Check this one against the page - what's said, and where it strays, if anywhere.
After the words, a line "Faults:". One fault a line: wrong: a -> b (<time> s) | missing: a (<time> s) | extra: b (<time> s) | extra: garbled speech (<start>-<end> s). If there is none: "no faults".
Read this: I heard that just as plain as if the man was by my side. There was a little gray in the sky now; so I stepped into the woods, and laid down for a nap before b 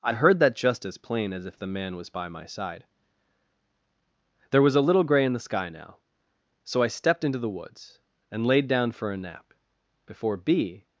I heard that just as plain as if the man was by my side. There was a little gray in the sky now; so I stepped into the woods, and laid down for a nap before b
Faults:
no faults